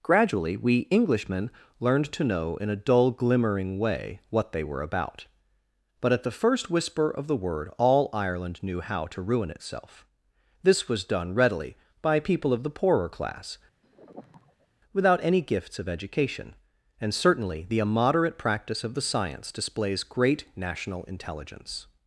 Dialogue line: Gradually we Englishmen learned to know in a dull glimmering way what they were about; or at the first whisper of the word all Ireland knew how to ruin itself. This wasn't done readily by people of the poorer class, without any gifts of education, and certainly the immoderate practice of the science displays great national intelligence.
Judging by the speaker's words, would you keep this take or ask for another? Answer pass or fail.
fail